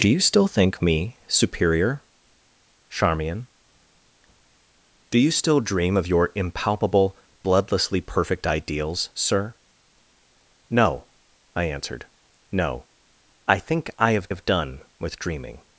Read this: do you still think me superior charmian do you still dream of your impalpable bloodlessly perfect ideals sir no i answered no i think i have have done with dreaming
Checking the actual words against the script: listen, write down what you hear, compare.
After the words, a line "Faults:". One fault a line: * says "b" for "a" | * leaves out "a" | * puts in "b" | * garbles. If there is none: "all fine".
do you still think me superior charmian do you still dream of your impalpable bloodlessly perfect ideals sir no i answered no i think i have have done with dreaming
Faults:
all fine